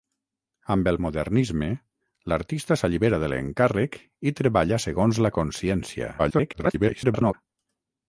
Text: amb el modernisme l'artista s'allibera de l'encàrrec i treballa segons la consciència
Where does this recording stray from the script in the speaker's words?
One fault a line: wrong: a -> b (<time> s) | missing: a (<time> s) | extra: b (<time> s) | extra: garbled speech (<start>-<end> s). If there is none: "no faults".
extra: garbled speech (6.2-7.3 s)